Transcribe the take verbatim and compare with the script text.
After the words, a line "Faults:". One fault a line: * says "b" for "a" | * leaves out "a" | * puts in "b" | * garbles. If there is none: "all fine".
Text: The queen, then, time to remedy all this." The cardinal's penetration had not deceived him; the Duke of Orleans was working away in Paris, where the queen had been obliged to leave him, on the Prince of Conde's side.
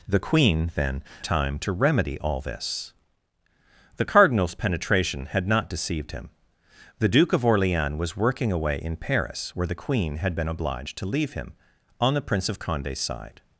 The queen, then, time to remedy all this." The cardinal's penetration had not deceived him; the Duke of Orleans was working away in Paris, where the queen had been obliged to leave him, on the Prince of Conde's side.
Faults:
all fine